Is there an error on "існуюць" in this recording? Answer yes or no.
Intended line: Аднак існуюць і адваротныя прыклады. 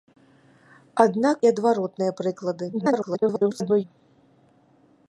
yes